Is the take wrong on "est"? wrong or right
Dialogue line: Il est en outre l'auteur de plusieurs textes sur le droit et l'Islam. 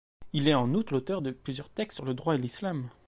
right